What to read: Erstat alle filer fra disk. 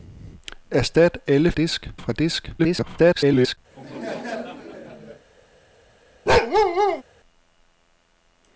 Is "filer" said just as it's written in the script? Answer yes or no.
no